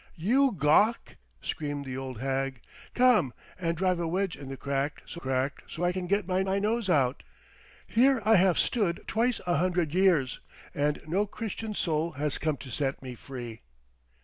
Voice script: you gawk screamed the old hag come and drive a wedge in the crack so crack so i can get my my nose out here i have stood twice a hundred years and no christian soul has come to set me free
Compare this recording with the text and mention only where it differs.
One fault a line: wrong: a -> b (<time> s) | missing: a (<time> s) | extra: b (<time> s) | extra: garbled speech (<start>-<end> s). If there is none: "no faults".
no faults